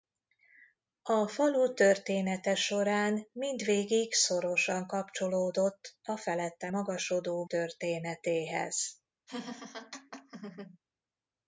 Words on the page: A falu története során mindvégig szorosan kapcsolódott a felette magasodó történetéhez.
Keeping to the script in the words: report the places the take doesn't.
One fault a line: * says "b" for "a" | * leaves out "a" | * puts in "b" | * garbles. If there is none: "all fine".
all fine